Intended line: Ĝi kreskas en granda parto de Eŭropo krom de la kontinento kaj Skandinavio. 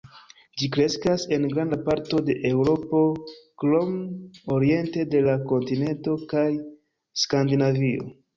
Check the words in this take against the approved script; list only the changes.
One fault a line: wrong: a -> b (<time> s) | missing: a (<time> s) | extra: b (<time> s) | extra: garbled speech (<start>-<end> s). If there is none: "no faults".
extra: oriente (4.6 s)